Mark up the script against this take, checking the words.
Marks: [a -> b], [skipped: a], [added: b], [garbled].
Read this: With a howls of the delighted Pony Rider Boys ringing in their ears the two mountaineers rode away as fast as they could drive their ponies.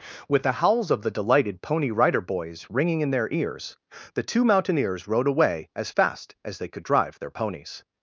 With [a -> the] howls of the delighted Pony Rider Boys ringing in their ears the two mountaineers rode away as fast as they could drive their ponies.